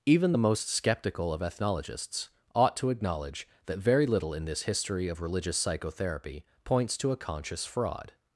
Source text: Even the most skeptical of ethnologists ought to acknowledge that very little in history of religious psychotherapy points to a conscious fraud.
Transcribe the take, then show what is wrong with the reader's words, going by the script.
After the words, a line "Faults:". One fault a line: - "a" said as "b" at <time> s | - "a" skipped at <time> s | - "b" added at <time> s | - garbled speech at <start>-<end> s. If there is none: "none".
Even the most skeptical of ethnologists ought to acknowledge that very little in this history of religious psychotherapy points to a conscious fraud.
Faults:
- "this" added at 4.4 s